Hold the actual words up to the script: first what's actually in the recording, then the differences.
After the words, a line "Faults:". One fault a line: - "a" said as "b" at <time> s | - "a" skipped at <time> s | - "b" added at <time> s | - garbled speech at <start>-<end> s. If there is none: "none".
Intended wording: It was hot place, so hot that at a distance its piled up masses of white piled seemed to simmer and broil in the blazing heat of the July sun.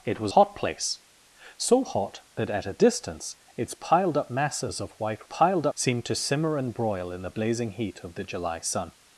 It was hot place, so hot that at a distance its piled up masses of white piled seemed to simmer and broil in the blazing heat of the July sun.
Faults:
none